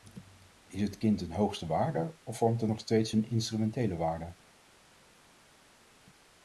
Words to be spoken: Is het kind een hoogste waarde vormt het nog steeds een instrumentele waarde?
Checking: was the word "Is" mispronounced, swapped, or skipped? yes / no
no